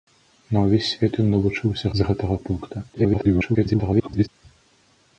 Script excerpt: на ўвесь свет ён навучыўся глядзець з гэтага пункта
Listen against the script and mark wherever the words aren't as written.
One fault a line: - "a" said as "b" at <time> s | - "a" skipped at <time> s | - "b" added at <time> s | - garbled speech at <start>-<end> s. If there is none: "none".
- "глядзець" skipped at 1.9 s
- garbled speech at 2.9-4.3 s